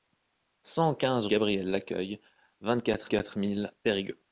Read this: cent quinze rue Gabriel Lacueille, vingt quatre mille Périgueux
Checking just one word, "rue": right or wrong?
wrong